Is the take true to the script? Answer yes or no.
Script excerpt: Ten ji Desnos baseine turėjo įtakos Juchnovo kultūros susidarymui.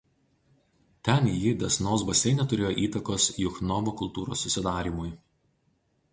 yes